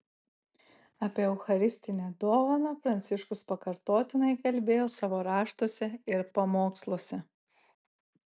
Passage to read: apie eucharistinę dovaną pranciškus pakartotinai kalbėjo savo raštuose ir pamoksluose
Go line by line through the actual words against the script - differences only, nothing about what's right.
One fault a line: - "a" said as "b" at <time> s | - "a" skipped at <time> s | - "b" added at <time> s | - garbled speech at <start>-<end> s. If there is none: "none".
none